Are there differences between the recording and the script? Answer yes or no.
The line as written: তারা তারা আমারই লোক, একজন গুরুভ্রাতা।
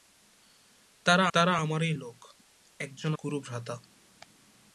no